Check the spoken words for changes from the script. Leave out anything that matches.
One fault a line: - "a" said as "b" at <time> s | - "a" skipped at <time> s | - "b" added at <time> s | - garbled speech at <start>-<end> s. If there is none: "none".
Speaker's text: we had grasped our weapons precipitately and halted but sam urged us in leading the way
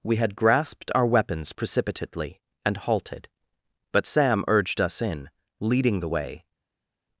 none